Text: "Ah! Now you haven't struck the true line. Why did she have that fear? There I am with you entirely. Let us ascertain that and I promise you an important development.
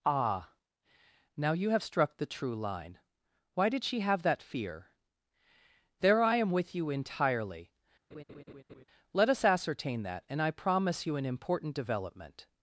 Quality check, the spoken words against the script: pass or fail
fail